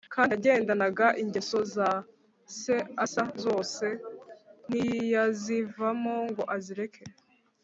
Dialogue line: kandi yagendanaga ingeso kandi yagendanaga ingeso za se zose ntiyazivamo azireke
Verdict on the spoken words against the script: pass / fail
fail